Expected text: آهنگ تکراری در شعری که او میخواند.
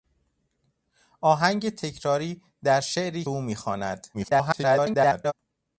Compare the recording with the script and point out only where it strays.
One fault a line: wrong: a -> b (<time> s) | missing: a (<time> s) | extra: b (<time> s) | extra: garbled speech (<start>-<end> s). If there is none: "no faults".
missing: که (3.3 s)
extra: garbled speech (4.1-5.3 s)